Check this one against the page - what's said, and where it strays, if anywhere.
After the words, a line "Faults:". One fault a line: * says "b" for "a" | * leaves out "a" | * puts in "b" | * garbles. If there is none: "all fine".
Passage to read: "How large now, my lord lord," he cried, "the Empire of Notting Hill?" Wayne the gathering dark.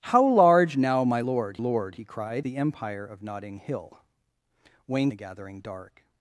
"How large now, my lord lord," he cried, "the Empire of Notting Hill?" Wayne the gathering dark.
Faults:
all fine